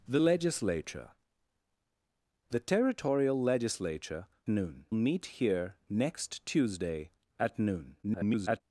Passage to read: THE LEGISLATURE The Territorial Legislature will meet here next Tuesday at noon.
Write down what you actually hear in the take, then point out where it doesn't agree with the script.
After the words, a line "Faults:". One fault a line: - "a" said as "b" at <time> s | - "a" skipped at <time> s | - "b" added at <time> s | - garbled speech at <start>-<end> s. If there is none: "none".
THE LEGISLATURE The Territorial Legislature noon meet here next Tuesday at noon. [garbled]
Faults:
- "will" said as "noon" at 4.5 s
- garbled speech at 8.0-8.6 s